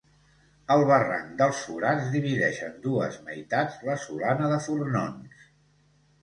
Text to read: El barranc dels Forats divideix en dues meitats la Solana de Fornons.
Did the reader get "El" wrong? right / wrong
right